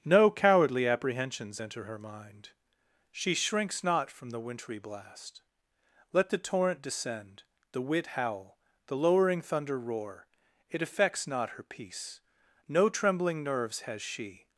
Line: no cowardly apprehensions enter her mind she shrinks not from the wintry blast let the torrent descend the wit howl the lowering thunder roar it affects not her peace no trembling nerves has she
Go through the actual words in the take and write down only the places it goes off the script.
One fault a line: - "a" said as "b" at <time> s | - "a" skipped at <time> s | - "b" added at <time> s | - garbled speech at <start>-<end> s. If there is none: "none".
none